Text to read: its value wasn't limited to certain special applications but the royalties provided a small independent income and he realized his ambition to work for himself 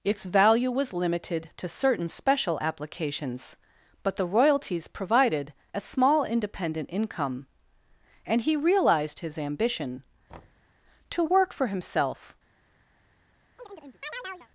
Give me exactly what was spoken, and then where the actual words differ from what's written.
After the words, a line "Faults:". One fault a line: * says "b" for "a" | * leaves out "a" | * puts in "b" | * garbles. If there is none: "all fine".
its value was limited to certain special applications but the royalties provided a small independent income and he realized his ambition to work for himself
Faults:
* says "was" for "wasn't"